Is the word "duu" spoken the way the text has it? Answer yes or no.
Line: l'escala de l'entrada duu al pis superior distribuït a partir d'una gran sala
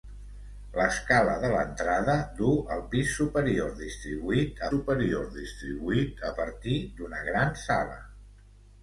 yes